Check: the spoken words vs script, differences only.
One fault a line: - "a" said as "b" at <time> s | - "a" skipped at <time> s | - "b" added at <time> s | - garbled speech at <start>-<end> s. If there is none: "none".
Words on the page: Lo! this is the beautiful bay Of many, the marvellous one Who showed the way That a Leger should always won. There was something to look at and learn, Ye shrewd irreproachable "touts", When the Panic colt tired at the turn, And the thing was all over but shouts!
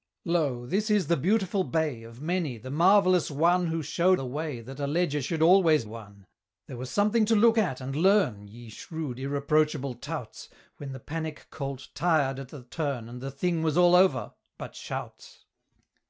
none